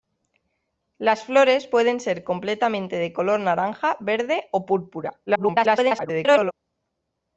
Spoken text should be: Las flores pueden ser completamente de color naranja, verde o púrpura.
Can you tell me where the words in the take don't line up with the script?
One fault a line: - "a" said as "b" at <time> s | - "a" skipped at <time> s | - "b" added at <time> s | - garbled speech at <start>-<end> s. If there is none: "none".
- garbled speech at 5.3-6.5 s